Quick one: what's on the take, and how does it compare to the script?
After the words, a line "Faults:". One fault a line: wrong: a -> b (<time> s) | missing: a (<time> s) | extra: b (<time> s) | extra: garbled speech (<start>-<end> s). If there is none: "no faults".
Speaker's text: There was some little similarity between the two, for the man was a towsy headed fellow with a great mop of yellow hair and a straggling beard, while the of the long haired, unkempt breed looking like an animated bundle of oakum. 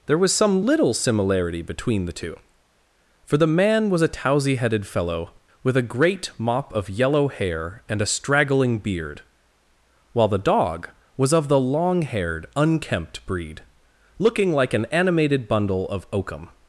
There was some little similarity between the two, for the man was a towsy headed fellow with a great mop of yellow hair and a straggling beard, while the dog was of the long haired, unkempt breed looking like an animated bundle of oakum.
Faults:
extra: dog was (10.4 s)